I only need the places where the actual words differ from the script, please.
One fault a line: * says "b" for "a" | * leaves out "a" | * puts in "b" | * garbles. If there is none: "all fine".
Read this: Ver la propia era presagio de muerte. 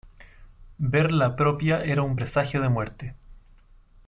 * puts in "un"